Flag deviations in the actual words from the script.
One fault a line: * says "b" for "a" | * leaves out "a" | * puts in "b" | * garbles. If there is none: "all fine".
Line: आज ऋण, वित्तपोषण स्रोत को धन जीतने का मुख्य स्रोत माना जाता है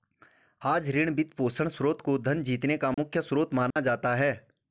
all fine